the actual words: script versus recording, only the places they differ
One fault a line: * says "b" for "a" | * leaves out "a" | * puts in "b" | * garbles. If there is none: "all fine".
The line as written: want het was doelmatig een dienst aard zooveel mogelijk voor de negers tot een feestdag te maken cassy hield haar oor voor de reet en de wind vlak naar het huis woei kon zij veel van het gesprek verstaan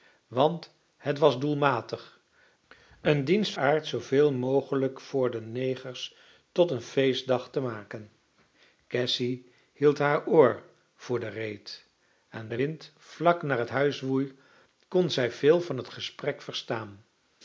all fine